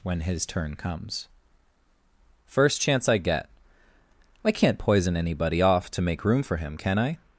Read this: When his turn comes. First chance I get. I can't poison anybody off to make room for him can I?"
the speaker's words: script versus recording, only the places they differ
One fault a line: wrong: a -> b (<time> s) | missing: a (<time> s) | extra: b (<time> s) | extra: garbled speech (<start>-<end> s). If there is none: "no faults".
no faults